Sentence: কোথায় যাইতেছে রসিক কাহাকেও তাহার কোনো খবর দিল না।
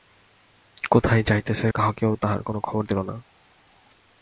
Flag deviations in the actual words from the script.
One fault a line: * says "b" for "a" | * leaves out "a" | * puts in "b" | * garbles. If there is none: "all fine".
* leaves out "রসিক"